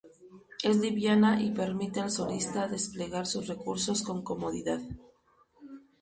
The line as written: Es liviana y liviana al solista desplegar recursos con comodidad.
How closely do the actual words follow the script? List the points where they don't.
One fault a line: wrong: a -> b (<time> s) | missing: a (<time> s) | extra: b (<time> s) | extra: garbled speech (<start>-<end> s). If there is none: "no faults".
wrong: liviana -> permite (1.5 s)
extra: sus (3.3 s)